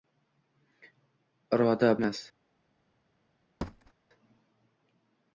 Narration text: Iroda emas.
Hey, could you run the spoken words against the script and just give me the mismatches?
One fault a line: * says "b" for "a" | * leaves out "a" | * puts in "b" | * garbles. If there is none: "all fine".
all fine